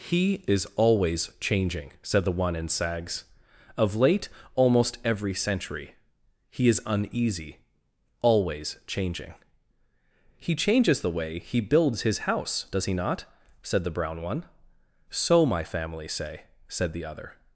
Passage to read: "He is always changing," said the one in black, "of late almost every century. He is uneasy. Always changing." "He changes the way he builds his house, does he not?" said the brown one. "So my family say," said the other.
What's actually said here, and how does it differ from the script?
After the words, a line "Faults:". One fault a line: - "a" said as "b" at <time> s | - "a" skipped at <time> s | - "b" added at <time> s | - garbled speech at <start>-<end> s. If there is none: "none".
"He is always changing," said the one in sags, "of late almost every century. He is uneasy. Always changing." "He changes the way he builds his house, does he not?" said the brown one. "So my family say," said the other.
Faults:
- "black" said as "sags" at 2.7 s